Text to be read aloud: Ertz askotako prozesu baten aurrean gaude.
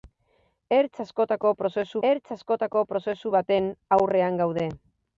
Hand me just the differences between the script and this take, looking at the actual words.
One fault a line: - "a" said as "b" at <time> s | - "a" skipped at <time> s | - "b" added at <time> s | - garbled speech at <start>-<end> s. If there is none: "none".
- "ertz askotako prozesu" added at 2.1 s